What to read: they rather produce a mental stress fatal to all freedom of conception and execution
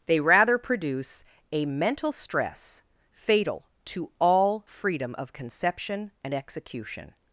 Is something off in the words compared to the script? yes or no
no